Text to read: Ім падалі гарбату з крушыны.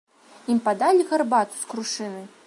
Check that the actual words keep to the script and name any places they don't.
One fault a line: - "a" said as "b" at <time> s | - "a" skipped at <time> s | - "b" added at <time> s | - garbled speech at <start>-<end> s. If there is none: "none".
none